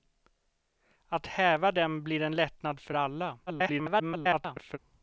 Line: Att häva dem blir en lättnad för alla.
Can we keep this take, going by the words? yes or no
no